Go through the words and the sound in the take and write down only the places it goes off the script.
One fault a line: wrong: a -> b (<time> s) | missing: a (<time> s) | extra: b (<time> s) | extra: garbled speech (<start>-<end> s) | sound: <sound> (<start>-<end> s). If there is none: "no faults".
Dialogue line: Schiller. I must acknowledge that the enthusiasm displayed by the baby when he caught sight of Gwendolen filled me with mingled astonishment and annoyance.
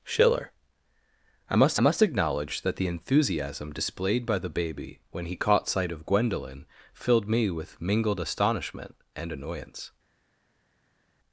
extra: must (1.8 s)